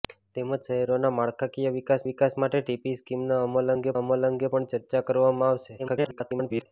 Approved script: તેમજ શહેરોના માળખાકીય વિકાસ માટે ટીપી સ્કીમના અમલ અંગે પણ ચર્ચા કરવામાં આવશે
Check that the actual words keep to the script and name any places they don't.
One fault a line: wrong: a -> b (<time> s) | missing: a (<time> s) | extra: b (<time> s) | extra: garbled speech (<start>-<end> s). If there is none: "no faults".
extra: વિકાસ (2.1 s)
extra: અમલ અંગે (4.0 s)
extra: garbled speech (5.8-6.7 s)